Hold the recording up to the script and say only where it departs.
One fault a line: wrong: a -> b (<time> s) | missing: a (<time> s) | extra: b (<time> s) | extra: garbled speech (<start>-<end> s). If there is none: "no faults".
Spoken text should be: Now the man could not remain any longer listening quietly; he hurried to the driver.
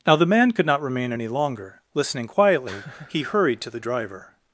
no faults